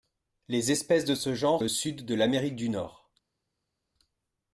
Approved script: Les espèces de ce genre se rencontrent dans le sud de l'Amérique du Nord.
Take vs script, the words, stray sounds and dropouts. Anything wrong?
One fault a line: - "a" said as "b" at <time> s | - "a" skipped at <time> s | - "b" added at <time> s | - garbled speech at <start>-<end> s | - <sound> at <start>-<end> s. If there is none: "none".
- "se rencontrent dans" skipped at 1.6 s